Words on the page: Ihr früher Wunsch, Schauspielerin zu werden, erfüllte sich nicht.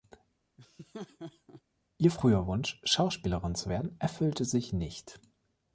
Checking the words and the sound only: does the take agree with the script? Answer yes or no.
no